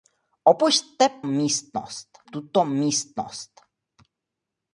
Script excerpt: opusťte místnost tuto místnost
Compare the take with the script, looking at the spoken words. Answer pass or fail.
pass